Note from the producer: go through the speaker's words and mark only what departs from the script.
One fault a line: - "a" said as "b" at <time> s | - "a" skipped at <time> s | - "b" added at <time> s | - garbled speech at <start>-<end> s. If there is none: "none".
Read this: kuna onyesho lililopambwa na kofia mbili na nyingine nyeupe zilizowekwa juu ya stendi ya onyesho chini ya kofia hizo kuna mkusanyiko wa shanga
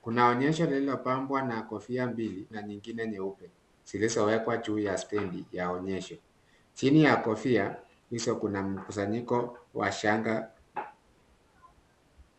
none